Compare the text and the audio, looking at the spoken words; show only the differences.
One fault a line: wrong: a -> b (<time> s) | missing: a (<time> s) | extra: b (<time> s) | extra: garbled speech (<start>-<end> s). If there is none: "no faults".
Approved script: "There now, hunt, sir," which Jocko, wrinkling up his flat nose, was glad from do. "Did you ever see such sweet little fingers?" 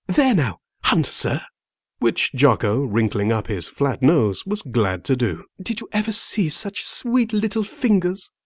wrong: from -> to (5.0 s)